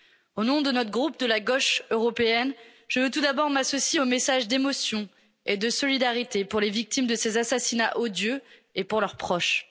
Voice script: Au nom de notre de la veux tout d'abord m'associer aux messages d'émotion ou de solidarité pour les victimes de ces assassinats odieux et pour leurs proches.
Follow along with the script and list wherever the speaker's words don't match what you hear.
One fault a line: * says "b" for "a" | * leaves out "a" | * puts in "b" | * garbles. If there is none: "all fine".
* puts in "groupe"
* puts in "gauche européenne je"
* says "et" for "ou"